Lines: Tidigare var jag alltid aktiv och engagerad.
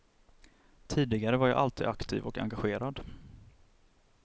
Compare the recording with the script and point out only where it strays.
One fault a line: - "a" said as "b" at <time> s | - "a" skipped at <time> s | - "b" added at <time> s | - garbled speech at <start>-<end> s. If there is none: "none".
none